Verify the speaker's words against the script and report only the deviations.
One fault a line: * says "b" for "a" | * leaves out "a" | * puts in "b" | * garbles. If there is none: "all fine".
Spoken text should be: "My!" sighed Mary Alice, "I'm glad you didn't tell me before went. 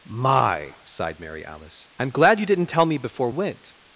all fine